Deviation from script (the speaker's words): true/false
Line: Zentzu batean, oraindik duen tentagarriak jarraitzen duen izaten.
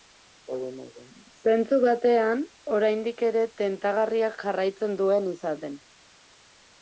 true